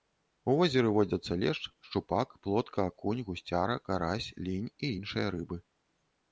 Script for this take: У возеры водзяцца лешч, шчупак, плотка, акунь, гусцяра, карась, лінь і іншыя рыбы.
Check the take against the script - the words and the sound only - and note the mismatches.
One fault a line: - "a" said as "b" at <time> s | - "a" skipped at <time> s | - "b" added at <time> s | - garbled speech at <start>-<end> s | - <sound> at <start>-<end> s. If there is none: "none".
none